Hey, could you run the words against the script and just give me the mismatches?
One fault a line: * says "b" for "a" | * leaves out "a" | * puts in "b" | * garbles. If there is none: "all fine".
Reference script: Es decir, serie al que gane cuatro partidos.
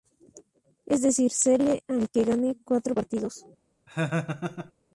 all fine